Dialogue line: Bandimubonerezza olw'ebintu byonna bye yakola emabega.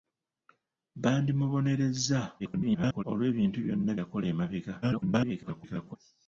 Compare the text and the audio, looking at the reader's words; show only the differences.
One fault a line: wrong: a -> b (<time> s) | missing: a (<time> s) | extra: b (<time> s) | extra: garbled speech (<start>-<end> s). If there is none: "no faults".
extra: garbled speech (2.4-3.0 s)
missing: bye (3.9 s)
extra: garbled speech (4.8-6.0 s)